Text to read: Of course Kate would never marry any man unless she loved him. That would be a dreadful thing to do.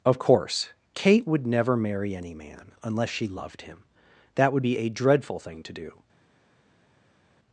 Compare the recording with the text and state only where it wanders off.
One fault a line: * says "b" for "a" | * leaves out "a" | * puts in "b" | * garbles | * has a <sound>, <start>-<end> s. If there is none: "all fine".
all fine